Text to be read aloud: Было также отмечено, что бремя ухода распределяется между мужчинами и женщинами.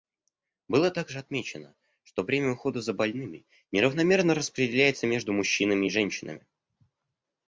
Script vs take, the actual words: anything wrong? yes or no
yes